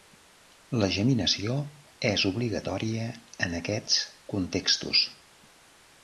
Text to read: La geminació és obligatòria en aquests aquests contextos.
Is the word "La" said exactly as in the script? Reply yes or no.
yes